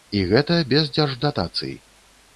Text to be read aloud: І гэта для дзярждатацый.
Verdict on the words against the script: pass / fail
fail